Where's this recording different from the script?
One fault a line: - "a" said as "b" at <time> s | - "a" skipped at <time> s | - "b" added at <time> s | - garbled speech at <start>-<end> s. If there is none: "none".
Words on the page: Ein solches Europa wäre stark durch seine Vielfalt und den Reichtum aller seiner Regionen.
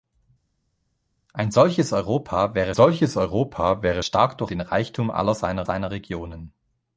- "stark durch seine Vielfalt und" said as "solches Europa wäre stark durch" at 2.7 s
- "seiner" added at 5.6 s